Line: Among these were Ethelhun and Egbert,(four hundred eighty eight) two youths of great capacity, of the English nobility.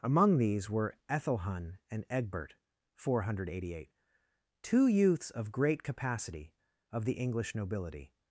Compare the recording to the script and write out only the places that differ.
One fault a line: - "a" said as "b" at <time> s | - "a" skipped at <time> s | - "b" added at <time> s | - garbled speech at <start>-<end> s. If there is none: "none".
none